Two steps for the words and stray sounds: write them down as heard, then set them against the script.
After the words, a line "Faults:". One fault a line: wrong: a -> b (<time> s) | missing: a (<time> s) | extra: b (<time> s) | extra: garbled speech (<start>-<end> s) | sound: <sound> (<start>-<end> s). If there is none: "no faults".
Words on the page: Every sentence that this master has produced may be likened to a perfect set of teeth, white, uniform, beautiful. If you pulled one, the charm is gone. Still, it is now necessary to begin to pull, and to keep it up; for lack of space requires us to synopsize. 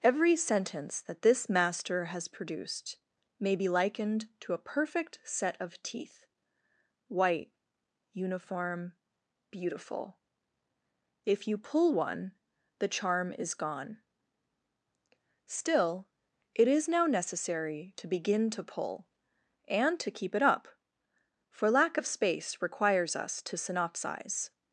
Every sentence that this master has produced may be likened to a perfect set of teeth, white, uniform, beautiful. If you pull one, the charm is gone. Still, it is now necessary to begin to pull, and to keep it up; for lack of space requires us to synopsize.
Faults:
wrong: pulled -> pull (11.6 s)